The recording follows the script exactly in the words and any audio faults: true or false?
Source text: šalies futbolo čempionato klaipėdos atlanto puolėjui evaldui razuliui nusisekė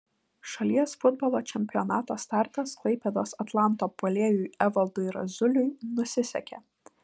false